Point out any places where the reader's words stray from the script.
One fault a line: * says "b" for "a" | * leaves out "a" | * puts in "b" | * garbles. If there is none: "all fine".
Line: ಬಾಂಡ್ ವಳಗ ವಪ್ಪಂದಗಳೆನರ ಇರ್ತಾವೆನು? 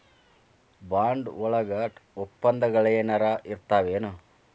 all fine